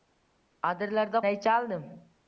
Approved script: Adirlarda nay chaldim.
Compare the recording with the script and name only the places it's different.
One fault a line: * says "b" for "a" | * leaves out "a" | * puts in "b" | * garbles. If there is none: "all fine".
all fine